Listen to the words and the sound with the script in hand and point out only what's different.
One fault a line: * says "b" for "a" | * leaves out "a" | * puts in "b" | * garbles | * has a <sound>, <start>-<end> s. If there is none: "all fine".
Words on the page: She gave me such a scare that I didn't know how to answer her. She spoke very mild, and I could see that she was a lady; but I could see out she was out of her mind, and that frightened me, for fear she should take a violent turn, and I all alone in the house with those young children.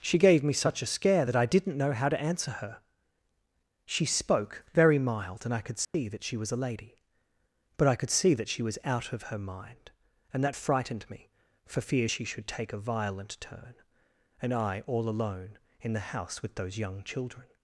* has a dropout, 5.8-5.9 s
* says "that" for "out"